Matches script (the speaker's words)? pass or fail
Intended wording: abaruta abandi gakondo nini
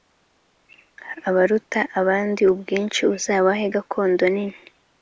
fail